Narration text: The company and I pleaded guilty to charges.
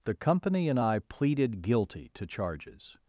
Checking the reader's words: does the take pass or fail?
pass